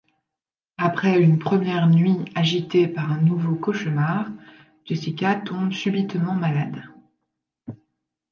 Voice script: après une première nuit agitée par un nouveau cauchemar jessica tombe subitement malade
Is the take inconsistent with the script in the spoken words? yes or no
no